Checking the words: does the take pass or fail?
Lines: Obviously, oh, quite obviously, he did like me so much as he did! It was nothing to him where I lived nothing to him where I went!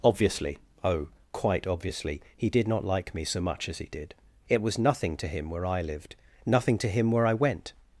fail